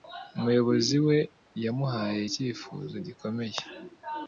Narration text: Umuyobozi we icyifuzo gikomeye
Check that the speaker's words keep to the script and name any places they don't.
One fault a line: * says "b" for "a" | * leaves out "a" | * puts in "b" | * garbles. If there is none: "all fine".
* puts in "yamuhaye"